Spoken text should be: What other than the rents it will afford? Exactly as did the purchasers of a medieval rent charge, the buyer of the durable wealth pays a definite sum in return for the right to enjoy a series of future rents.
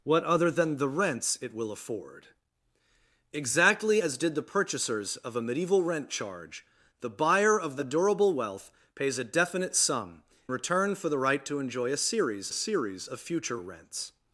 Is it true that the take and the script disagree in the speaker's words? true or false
true